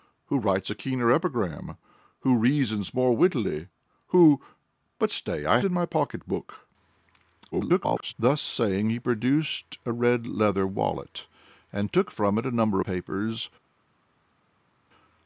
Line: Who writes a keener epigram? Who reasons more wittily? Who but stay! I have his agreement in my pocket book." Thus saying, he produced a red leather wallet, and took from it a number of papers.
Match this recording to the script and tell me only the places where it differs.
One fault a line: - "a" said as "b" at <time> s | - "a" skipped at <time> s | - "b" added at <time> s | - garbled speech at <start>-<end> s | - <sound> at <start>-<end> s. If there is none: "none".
- "have his agreement" skipped at 5.6 s
- garbled speech at 7.5-8.1 s
- "of" skipped at 12.8 s